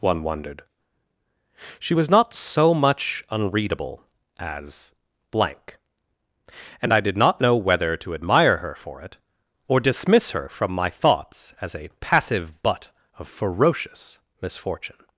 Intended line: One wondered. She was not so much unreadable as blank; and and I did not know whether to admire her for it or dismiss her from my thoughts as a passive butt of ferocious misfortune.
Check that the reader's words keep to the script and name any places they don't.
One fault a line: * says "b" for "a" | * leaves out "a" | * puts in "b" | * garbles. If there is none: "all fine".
* leaves out "and"